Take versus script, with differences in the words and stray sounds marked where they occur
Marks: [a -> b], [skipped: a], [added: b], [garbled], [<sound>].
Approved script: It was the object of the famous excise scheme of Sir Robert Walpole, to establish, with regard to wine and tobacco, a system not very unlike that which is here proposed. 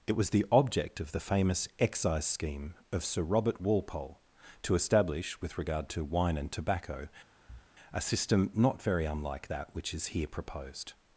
It was the object of the famous excise scheme of Sir Robert Walpole, to establish, with regard to wine and tobacco, [thud] a system not very unlike that which is here proposed.